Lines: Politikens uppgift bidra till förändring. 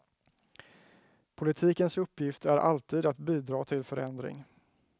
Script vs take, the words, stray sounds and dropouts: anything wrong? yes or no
yes